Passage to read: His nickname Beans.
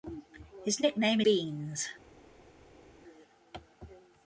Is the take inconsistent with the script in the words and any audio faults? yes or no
no